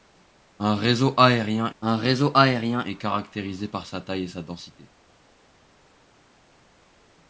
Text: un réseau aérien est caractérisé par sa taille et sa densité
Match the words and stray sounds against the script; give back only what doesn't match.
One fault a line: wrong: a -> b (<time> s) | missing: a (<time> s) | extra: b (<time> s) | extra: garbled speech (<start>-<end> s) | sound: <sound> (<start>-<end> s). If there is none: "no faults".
extra: un réseau aérien (1.8 s)